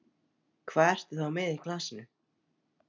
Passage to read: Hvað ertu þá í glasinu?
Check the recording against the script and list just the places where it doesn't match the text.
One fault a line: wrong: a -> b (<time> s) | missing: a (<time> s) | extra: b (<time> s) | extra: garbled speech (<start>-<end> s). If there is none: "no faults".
extra: með (1.4 s)